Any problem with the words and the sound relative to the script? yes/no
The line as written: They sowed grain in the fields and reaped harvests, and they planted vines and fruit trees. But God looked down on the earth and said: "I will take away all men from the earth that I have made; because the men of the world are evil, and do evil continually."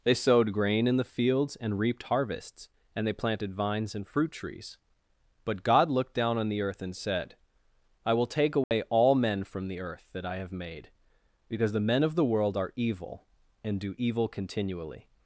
yes